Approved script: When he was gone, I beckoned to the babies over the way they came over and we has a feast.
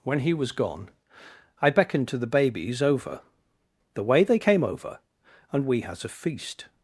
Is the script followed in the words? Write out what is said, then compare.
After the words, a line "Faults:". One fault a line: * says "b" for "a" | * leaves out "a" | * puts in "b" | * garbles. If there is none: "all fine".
When he was gone, I beckoned to the babies over the way they came over and we has a feast.
Faults:
all fine